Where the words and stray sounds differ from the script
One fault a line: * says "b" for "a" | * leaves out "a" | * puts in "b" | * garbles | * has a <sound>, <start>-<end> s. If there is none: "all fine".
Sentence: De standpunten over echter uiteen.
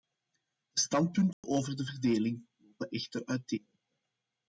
* has a dropout, 1.3-1.4 s
* puts in "de verdeling lopen"